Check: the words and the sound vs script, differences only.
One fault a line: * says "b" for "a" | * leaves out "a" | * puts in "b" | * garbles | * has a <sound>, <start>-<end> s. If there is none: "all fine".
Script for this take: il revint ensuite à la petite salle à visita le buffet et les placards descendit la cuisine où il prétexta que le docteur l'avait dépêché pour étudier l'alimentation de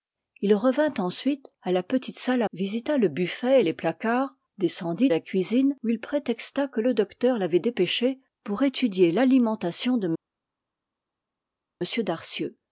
all fine